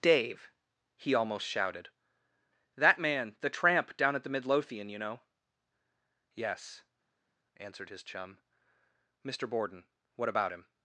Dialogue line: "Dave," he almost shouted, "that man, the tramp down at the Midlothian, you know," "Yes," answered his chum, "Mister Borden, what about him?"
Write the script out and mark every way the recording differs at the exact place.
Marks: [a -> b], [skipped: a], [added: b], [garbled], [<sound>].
"Dave," he almost shouted, "that man, the tramp down at the Midlothian, you know," "Yes," answered his chum, "Mister Borden, what about him?"